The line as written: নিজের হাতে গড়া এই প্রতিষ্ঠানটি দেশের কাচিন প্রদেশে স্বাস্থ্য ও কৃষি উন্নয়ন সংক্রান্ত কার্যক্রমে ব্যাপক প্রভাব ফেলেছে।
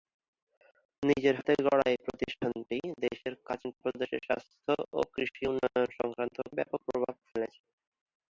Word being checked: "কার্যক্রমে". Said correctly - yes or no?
no